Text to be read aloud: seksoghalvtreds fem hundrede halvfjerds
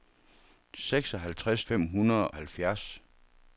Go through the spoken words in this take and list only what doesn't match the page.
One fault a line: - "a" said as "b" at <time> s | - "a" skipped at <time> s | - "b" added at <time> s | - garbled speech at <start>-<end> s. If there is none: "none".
none